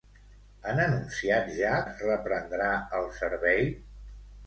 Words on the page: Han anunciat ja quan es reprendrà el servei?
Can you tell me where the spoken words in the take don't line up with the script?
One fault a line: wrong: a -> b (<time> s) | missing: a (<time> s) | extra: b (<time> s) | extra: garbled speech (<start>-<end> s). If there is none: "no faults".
missing: quan (1.8 s)